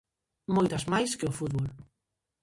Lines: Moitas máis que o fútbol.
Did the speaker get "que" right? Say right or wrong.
right